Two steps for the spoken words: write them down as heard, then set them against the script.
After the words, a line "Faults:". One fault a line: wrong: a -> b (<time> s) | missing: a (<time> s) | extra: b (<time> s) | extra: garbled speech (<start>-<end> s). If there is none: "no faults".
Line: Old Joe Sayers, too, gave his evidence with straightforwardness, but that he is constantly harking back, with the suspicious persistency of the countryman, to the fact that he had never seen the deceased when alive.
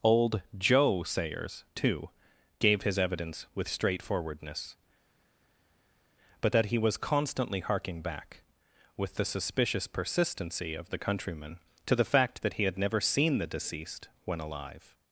Old Joe Sayers, too, gave his evidence with straightforwardness, but that he was constantly harking back, with the suspicious persistency of the countryman, to the fact that he had never seen the deceased when alive.
Faults:
wrong: is -> was (6.8 s)